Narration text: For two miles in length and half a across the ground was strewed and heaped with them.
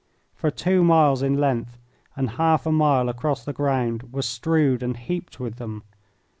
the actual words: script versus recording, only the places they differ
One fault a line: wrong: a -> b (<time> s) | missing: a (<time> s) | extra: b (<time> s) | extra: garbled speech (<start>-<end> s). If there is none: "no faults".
extra: mile (2.7 s)